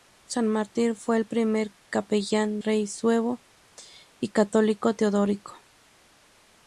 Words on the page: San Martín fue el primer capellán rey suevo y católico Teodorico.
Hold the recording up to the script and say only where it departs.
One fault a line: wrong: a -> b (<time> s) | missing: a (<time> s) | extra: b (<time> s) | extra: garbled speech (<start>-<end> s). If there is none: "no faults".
no faults